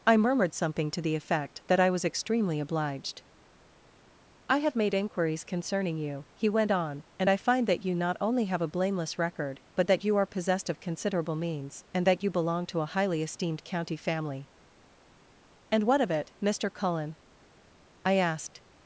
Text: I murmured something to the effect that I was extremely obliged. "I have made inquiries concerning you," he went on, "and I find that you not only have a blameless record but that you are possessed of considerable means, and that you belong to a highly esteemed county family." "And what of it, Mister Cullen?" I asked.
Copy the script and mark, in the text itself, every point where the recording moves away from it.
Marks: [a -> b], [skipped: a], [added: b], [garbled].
I murmured something to the effect that I was extremely obliged. "I have made inquiries concerning you," he went on, "and I find that you not only have a blameless record but that you are possessed of considerable means, and that you belong to a highly esteemed county family." "And what of it, Mister Cullen?" I asked.